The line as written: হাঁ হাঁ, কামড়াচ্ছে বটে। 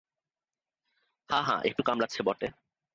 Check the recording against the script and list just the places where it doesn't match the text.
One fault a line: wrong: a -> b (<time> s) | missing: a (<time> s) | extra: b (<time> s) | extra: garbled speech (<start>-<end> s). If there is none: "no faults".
extra: একটু (1.6 s)